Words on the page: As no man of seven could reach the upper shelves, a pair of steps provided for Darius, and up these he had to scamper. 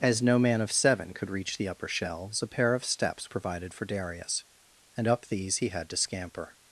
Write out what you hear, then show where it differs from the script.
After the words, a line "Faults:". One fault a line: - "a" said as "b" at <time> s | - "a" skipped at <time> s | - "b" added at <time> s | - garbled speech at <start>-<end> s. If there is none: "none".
As no man of seven could reach the upper shelves, a pair of steps provided for Darius, and up these he had to scamper.
Faults:
none